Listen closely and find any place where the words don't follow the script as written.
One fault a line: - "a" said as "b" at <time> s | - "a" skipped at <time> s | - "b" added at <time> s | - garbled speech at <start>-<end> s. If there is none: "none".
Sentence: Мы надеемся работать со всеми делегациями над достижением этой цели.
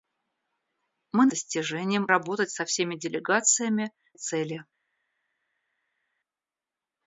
- "надеемся" said as "достижением" at 1.3 s
- "над достижением этой" skipped at 3.9 s